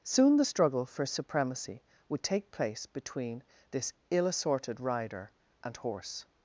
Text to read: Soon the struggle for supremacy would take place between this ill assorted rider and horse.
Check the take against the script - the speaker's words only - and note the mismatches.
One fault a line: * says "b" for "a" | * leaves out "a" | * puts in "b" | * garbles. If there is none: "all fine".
all fine